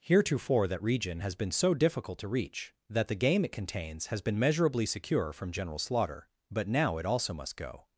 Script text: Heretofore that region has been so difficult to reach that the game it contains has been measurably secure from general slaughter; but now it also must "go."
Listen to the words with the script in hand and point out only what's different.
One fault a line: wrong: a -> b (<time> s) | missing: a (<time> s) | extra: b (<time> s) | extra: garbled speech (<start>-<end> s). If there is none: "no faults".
no faults